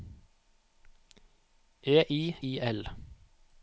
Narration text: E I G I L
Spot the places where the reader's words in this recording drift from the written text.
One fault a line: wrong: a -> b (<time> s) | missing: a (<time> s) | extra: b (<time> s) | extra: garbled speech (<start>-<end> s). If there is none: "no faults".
missing: G (2.4 s)